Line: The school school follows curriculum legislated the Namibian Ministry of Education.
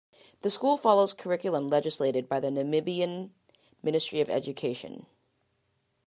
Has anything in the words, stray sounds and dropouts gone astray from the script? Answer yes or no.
yes